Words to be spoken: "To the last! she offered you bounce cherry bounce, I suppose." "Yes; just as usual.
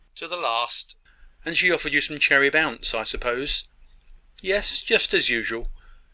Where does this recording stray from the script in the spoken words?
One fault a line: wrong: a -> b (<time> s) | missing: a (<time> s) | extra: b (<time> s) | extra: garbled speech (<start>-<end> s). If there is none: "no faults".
extra: and (1.4 s)
wrong: bounce -> some (2.0 s)